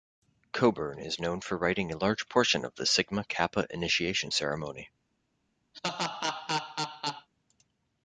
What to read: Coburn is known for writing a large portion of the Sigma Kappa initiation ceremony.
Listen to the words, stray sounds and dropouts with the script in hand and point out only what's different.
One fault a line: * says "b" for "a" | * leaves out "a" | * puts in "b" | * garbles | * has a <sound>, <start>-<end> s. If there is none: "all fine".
* has a laugh, 5.7-7.3 s